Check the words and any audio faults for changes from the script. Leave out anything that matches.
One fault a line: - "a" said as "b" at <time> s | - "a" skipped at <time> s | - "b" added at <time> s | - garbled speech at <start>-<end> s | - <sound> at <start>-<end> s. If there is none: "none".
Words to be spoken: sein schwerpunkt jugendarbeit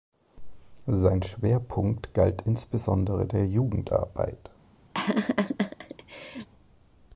- "galt insbesondere der" added at 2.1 s
- laugh at 4.9-6.5 s